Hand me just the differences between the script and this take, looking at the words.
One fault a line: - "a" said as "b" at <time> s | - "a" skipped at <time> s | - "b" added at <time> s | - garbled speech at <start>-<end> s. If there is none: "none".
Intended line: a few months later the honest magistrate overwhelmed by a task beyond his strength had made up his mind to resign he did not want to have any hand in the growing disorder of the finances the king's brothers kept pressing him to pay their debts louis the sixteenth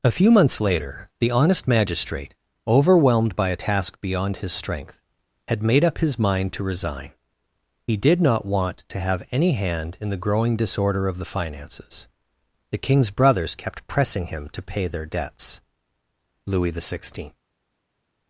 none